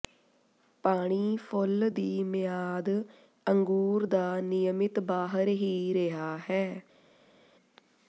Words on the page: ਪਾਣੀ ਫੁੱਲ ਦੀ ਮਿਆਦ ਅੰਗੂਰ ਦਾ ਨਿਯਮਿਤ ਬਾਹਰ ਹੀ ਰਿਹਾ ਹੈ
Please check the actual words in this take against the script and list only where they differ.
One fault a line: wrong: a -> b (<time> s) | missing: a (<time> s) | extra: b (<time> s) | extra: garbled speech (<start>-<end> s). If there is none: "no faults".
no faults